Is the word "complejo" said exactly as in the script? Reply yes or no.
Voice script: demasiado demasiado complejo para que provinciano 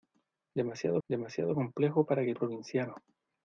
yes